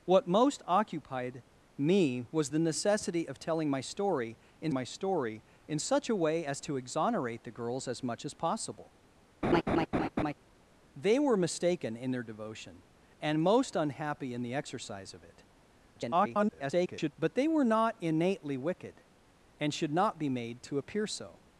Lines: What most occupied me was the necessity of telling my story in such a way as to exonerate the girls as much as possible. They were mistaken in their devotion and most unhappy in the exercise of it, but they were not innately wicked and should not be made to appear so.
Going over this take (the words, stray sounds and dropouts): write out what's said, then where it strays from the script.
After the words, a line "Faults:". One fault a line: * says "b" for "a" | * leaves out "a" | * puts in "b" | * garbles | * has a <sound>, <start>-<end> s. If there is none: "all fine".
What most occupied me was the necessity of telling my story in my story in such a way as to exonerate the girls as much as possible. They were mistaken in their devotion and most unhappy in the exercise of it, [garbled] but they were not innately wicked and should not be made to appear so.
Faults:
* puts in "my story in"
* has a laugh, 9.4-10.3 s
* garbles